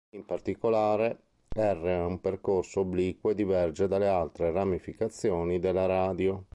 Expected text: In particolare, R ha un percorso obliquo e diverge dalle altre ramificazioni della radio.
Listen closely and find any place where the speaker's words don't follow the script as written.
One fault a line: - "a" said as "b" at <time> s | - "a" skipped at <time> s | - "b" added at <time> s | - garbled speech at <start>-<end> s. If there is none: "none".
none